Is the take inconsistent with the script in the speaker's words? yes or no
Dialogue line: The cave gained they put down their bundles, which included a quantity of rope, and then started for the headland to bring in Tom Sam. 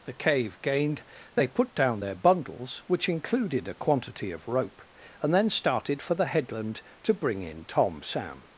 no